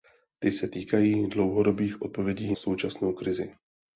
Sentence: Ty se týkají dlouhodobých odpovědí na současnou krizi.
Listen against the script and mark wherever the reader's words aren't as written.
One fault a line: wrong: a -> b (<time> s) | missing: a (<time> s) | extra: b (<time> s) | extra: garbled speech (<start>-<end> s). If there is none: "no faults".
missing: na (2.6 s)